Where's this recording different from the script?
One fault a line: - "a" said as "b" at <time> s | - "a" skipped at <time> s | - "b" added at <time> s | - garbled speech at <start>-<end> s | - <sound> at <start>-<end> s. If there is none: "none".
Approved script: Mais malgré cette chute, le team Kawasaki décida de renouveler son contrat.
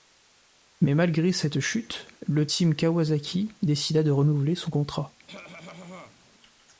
- cough at 5.3-6.2 s